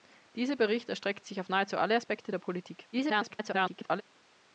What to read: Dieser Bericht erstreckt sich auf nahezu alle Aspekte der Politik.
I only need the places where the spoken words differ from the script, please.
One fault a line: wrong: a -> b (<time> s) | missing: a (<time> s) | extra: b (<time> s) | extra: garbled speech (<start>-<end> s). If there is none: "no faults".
extra: garbled speech (2.9-4.0 s)